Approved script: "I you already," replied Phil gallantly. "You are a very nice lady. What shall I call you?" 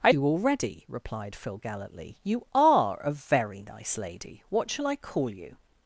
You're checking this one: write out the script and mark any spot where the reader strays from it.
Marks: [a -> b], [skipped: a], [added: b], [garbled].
"I you already," replied Phil gallantly. "You are a very nice lady. What shall I call you?"